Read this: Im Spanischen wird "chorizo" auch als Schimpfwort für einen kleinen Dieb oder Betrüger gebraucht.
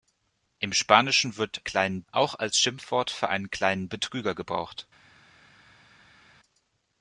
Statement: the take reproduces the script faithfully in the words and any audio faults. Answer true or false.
false